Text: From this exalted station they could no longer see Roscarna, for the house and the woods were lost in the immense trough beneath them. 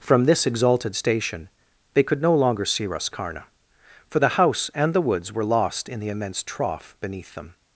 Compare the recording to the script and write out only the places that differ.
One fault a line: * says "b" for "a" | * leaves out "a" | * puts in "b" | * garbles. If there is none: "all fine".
all fine